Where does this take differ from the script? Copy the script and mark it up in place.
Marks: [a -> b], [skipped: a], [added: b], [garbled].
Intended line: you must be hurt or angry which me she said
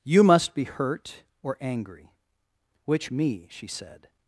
you must be hurt or angry which me she said